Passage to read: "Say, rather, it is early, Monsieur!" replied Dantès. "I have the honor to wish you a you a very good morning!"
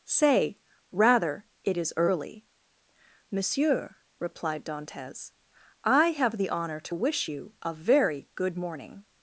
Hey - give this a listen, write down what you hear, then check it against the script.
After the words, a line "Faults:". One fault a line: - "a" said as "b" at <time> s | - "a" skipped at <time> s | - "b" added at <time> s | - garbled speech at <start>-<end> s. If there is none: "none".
"Say, rather, it is early, Monsieur!" replied Dantès. "I have the honor to wish you a very good morning!"
Faults:
- "you a" skipped at 7.7 s